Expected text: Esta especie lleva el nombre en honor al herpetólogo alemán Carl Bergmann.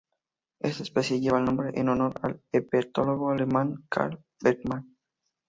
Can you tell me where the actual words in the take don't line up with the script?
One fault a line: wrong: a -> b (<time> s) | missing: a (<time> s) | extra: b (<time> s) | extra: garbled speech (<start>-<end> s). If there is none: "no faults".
no faults